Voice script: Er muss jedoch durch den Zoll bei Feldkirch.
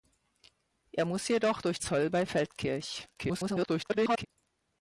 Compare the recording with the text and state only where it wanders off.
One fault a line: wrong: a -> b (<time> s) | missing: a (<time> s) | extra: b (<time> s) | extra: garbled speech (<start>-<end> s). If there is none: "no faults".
missing: den (1.8 s)
extra: garbled speech (3.1-4.3 s)